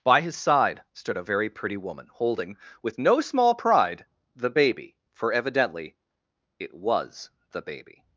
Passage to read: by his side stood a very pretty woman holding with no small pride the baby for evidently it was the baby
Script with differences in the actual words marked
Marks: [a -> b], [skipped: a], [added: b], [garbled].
by his side stood a very pretty woman holding with no small pride the baby for evidently it was the baby